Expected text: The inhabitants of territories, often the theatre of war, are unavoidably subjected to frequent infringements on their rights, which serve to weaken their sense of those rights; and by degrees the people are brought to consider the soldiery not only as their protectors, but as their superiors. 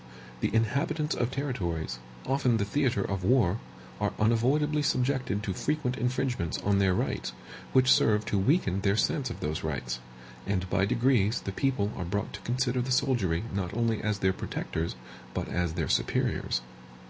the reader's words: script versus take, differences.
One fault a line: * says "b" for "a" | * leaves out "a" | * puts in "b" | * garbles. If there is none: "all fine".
all fine